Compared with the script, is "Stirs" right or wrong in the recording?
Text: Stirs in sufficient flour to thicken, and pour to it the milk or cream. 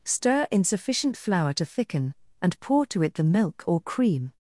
wrong